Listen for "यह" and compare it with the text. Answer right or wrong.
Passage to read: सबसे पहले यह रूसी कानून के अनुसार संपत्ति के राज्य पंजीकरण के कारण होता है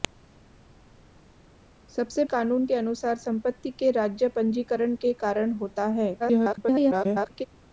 wrong